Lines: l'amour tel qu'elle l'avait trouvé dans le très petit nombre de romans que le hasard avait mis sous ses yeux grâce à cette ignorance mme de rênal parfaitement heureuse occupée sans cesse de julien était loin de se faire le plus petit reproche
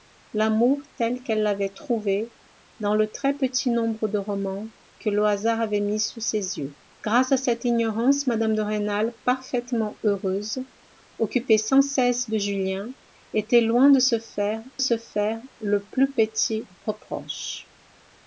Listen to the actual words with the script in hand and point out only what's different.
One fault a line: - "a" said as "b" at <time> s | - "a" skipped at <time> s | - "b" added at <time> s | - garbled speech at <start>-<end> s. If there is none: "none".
- "se faire" added at 14.8 s